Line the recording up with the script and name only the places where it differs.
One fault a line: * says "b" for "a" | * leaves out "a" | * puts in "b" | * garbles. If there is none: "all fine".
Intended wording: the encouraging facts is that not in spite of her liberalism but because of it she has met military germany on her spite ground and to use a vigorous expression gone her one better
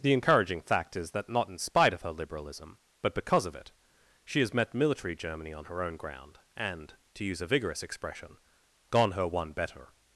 * says "fact" for "facts"
* says "own" for "spite"